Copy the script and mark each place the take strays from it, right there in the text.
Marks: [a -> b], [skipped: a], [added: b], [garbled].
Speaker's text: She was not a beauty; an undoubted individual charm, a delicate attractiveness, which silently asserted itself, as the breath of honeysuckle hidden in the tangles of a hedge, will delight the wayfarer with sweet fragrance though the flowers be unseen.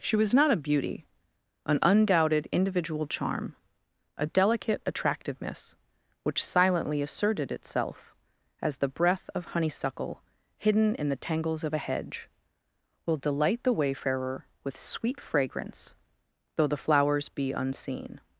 She was not a beauty; an undoubted individual charm, a delicate attractiveness, which silently asserted itself, as the breath of honeysuckle hidden in the tangles of a hedge, will delight the wayfarer with sweet fragrance though the flowers be unseen.